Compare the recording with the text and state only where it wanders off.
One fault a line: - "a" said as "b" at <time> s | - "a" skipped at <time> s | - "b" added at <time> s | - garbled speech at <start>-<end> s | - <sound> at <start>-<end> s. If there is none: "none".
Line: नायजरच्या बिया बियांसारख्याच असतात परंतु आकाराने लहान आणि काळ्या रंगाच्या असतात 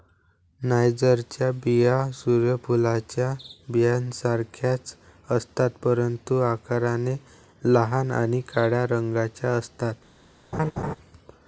- "सूर्य फुलाच्या" added at 2.1 s
- laugh at 10.5-11.0 s